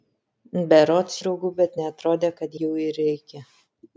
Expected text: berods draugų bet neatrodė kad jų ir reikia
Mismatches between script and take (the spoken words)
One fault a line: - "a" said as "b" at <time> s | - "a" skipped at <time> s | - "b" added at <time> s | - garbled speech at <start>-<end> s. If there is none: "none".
none